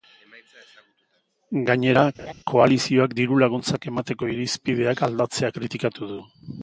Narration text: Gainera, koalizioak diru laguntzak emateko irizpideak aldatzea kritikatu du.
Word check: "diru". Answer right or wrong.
right